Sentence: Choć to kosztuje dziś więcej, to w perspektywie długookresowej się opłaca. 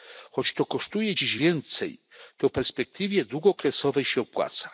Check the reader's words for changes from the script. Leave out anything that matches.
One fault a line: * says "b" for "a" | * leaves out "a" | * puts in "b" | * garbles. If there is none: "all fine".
all fine